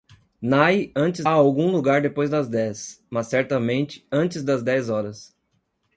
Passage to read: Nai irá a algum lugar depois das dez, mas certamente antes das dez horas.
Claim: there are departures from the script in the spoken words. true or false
true